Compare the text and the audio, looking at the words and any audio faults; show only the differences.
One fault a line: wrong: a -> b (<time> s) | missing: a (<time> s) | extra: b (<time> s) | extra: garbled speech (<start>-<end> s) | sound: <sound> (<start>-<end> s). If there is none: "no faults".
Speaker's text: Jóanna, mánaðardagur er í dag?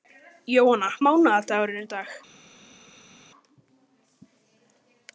no faults